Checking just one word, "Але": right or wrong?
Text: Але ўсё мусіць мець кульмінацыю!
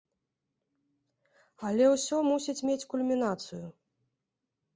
right